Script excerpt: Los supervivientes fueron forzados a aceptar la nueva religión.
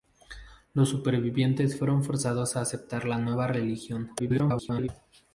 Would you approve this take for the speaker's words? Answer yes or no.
no